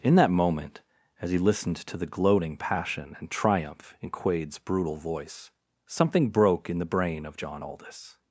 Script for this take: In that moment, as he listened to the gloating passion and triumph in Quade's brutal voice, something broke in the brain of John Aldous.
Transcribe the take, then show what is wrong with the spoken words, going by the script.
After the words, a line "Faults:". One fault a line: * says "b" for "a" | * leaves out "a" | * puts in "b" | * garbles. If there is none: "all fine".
In that moment, as he listened to the gloating passion and triumph in Quade's brutal voice, something broke in the brain of John Aldous.
Faults:
all fine